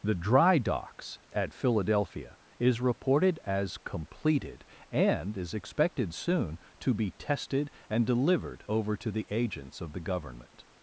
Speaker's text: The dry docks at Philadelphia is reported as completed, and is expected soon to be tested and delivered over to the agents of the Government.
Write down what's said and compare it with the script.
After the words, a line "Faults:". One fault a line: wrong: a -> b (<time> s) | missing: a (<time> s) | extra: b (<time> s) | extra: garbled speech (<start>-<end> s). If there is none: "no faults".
The dry docks at Philadelphia is reported as completed, and is expected soon to be tested and delivered over to the agents of the Government.
Faults:
no faults